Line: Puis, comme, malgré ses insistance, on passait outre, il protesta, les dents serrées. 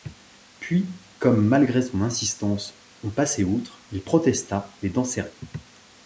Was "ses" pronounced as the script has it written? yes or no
no